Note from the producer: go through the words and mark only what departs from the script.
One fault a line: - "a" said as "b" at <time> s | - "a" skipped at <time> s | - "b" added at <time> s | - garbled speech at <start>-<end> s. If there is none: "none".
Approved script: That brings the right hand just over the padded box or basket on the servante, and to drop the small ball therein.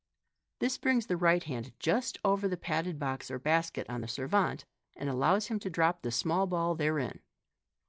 - "That" said as "This" at 0.6 s
- "allows him" added at 5.1 s